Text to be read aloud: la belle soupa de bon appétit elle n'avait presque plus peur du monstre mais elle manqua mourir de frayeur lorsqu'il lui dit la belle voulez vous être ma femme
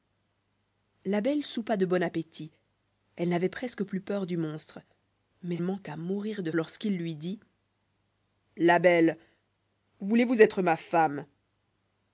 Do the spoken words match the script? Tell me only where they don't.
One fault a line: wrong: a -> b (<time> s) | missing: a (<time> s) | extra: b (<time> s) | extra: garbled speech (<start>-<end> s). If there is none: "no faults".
missing: elle (5.6 s)
missing: frayeur (6.5 s)